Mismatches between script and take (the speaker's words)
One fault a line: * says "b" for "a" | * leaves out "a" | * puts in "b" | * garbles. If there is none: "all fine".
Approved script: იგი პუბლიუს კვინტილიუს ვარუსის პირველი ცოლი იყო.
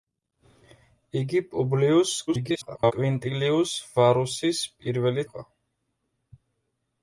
* garbles
* leaves out "ცოლი"